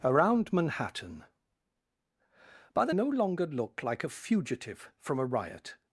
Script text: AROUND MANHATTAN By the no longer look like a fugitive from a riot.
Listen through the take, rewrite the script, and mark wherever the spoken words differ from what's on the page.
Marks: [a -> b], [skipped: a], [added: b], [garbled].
AROUND MANHATTAN By the no longer look like a fugitive from a riot.